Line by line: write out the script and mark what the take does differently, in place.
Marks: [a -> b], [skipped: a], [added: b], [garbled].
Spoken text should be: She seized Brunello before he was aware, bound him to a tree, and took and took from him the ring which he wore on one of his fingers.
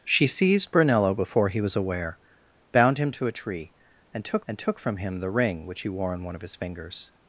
She seized Brunello before he was aware, bound him to a tree, and took and took from him the ring which he wore on one of his fingers.